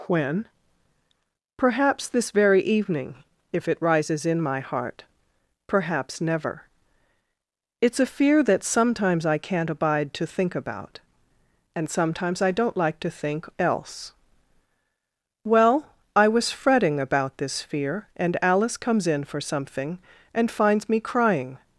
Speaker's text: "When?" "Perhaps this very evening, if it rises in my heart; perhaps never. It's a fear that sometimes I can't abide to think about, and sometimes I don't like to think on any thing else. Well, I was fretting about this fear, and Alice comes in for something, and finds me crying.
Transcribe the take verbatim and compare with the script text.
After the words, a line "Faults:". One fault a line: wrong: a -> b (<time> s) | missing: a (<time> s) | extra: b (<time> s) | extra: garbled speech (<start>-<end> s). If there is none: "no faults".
"When?" "Perhaps this very evening, if it rises in my heart; perhaps never. It's a fear that sometimes I can't abide to think about, and sometimes I don't like to think else. Well, I was fretting about this fear, and Alice comes in for something, and finds me crying.
Faults:
missing: on any thing (13.5 s)